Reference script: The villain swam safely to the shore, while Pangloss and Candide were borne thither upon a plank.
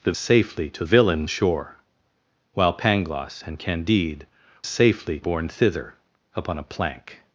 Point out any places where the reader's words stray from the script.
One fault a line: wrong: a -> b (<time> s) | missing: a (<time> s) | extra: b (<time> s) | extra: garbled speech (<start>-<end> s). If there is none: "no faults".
missing: villain swam (0.1 s)
wrong: the -> villain (0.8 s)
wrong: were -> safely (4.6 s)